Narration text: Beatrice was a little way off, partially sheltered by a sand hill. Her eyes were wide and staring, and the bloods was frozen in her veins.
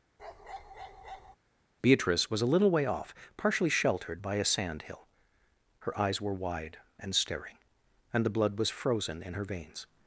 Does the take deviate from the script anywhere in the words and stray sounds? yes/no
yes